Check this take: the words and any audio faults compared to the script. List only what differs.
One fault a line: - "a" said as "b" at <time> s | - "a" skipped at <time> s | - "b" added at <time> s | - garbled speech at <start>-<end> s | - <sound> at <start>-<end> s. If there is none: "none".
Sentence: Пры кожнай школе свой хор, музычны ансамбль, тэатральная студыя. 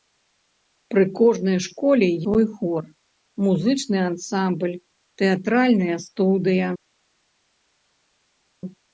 none